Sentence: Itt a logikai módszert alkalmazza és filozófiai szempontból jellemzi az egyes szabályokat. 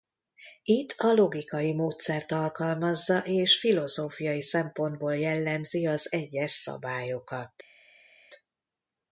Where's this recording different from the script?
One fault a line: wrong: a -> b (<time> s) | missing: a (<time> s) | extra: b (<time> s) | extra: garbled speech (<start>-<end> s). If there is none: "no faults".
no faults